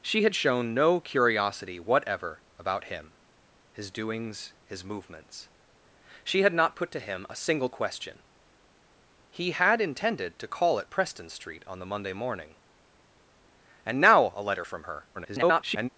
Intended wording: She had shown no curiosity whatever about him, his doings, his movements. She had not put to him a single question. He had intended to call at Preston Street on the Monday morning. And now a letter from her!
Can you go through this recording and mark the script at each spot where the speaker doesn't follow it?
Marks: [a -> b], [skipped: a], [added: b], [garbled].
She had shown no curiosity whatever about him, his doings, his movements. She had not put to him a single question. He had intended to call at Preston Street on the Monday morning. And now a letter from her! [garbled]